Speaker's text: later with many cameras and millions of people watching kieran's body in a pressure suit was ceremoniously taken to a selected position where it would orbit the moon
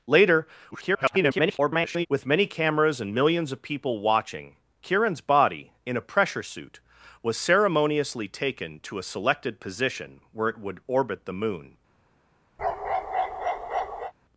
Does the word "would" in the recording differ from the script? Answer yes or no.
no